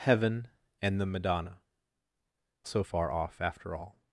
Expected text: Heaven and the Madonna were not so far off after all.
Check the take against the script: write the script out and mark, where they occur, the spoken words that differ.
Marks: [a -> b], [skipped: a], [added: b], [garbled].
Heaven and the Madonna [skipped: were not] so far off after all.